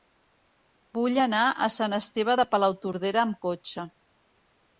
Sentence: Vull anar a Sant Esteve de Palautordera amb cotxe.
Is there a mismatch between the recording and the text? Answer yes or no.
no